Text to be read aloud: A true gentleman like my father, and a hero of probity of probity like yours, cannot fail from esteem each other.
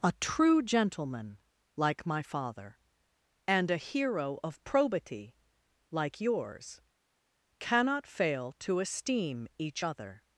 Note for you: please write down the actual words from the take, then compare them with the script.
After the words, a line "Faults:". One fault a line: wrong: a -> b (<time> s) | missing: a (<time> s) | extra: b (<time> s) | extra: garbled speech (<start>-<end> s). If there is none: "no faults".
A true gentleman like my father, and a hero of probity like yours, cannot fail to esteem each other.
Faults:
missing: of probity (5.3 s)
wrong: from -> to (8.6 s)